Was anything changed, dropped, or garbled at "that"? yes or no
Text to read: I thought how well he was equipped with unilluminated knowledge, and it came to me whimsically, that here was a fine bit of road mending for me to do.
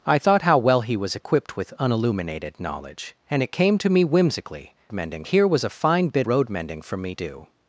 yes